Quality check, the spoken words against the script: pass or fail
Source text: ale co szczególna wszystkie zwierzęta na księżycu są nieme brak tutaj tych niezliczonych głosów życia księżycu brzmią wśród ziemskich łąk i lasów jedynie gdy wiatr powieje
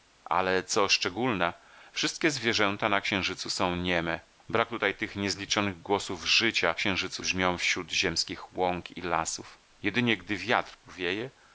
pass